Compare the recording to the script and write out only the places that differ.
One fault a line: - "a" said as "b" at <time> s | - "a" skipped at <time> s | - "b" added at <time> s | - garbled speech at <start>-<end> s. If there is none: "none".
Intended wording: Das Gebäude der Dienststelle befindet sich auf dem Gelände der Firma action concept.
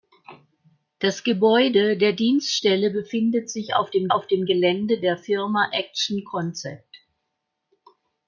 - "auf dem" added at 4.1 s